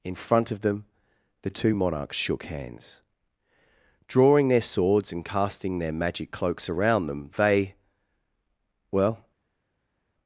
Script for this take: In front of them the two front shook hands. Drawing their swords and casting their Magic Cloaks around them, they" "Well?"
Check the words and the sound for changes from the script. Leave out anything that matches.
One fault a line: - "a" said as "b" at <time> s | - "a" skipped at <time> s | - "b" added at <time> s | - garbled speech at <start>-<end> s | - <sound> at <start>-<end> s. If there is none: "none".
- "front" said as "monarchs" at 1.7 s